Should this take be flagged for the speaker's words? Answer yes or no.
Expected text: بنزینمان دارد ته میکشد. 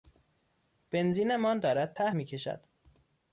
no